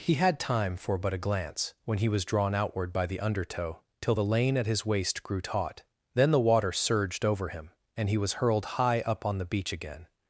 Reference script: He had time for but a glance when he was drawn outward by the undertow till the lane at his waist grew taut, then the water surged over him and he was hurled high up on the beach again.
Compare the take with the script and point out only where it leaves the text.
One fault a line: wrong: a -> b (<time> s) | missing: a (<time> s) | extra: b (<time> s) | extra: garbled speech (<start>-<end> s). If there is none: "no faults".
no faults